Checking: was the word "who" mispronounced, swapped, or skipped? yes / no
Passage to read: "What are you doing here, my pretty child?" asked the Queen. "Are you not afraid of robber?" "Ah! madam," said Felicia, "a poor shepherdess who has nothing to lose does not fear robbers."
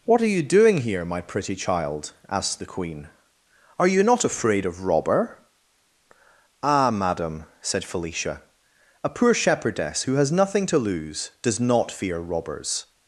no